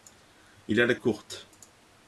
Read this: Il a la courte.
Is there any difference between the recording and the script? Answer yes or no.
no